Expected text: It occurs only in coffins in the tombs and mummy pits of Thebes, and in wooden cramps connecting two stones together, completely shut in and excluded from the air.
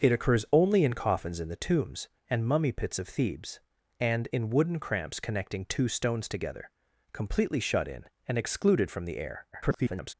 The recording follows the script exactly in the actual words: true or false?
false